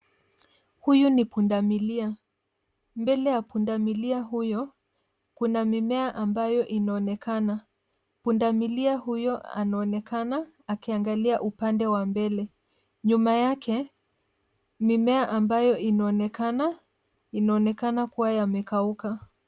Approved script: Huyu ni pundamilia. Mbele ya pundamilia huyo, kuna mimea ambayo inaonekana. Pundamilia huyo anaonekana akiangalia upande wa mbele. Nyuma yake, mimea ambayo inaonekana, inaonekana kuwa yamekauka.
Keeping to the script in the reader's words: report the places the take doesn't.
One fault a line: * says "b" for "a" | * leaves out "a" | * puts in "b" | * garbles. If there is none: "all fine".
all fine